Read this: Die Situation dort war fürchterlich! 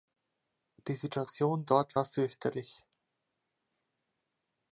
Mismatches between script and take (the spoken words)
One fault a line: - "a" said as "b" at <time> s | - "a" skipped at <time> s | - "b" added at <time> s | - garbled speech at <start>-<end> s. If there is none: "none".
none